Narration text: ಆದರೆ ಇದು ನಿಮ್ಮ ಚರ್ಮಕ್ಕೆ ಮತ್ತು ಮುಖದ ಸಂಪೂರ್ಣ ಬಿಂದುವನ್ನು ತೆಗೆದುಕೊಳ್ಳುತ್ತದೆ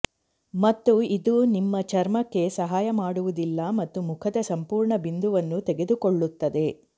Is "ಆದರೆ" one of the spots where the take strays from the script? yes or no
yes